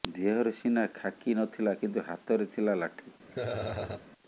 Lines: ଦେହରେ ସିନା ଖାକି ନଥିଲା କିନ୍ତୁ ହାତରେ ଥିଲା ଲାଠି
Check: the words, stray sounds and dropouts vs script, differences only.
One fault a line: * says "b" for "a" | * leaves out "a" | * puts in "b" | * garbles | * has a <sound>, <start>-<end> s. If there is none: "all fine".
* has a laugh, 3.3-4.1 s